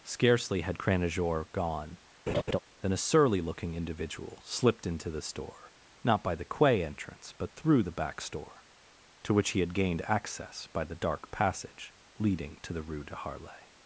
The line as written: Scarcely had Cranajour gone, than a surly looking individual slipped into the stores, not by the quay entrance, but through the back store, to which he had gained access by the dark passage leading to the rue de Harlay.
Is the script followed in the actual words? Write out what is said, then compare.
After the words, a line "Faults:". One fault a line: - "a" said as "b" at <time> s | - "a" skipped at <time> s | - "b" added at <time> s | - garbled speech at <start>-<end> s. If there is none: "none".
Scarcely had Cranajour gone, than a surly looking individual slipped into the store, not by the quay entrance, but through the back store, to which he had gained access by the dark passage leading to the rue de Harlay.
Faults:
- "stores" said as "store" at 5.2 s